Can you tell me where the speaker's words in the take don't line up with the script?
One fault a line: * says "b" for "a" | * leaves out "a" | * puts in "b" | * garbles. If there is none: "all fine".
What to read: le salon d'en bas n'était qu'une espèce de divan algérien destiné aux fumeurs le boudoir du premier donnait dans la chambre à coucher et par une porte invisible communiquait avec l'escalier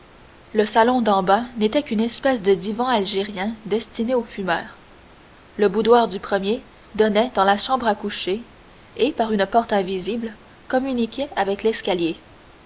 all fine